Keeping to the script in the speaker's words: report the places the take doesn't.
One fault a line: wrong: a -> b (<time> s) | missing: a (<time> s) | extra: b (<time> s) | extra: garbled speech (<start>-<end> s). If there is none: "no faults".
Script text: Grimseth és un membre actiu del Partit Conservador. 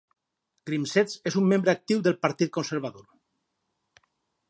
no faults